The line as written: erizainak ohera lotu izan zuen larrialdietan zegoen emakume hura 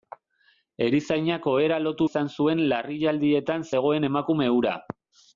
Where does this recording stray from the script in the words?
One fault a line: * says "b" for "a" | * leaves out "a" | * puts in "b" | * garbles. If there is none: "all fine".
all fine